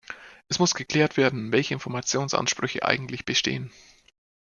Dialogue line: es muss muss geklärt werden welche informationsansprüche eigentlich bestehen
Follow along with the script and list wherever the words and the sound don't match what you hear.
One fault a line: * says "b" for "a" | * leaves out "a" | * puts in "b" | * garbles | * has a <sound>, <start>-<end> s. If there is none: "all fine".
* leaves out "muss"